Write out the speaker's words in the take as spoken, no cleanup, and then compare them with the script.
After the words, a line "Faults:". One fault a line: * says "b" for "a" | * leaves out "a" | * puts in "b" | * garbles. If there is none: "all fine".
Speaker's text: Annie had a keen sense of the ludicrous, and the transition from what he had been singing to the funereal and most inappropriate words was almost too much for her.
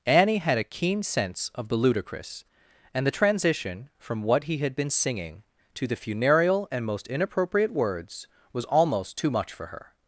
Annie had a keen sense of the ludicrous, and the transition from what he had been singing to the funereal and most inappropriate words was almost too much for her.
Faults:
all fine